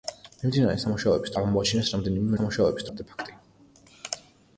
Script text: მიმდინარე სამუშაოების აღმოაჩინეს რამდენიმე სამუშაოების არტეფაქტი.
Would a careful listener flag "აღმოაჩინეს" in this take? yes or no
no